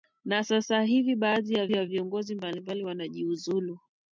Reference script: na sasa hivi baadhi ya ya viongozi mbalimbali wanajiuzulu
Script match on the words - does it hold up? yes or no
yes